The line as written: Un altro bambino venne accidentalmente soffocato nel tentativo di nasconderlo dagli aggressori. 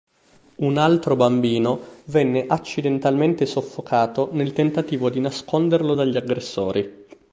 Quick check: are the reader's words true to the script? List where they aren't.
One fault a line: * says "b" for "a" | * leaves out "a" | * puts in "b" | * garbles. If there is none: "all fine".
all fine